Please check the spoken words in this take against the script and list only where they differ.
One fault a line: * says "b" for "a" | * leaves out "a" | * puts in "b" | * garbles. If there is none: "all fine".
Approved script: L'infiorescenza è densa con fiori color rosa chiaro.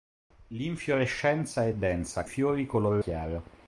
* leaves out "con"
* leaves out "rosa"